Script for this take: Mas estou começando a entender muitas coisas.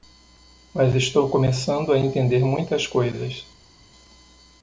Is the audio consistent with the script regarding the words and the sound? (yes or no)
yes